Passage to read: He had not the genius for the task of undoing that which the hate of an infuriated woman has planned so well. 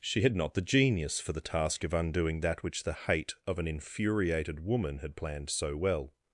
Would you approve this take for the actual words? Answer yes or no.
no